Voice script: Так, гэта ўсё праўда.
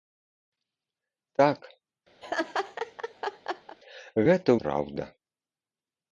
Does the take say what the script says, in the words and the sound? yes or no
no